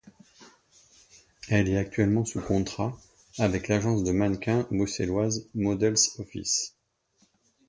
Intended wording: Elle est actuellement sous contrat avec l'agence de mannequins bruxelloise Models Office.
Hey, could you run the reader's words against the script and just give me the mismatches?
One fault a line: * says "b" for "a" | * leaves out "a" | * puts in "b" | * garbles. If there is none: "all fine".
all fine